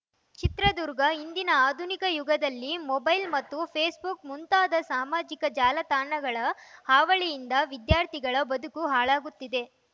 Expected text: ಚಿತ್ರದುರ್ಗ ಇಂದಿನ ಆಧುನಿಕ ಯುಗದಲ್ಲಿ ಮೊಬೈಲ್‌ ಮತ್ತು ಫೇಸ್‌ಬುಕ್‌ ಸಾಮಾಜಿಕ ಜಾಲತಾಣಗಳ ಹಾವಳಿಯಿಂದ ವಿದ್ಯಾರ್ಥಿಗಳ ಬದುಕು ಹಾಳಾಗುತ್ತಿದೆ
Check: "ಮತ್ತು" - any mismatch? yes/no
no